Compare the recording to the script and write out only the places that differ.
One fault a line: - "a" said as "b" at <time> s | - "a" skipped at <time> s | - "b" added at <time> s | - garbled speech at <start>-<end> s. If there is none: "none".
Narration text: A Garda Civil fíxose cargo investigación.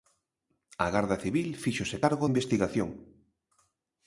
none